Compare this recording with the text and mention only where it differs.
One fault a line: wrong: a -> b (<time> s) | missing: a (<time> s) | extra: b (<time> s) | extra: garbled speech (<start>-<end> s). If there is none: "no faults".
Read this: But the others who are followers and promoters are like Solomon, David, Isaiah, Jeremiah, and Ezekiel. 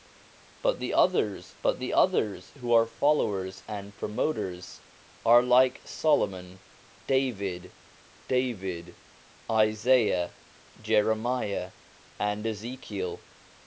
extra: but the others (1.6 s)
extra: David (8.3 s)